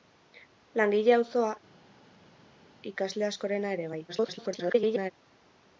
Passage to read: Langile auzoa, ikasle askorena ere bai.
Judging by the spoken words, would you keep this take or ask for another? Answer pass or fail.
fail